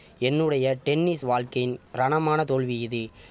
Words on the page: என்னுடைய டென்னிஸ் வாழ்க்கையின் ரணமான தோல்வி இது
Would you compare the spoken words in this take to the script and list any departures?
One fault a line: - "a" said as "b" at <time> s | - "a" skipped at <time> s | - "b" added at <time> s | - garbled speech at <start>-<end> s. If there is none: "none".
none